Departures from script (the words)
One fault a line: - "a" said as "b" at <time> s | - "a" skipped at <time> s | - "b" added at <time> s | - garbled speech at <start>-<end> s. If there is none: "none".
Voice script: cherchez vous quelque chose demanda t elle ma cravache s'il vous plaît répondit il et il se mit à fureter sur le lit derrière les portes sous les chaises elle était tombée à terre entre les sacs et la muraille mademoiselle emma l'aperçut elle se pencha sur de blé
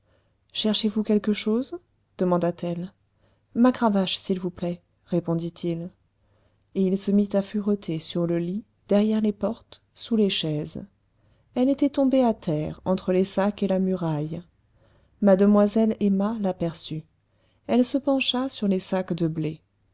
- "les sacs" added at 18.7 s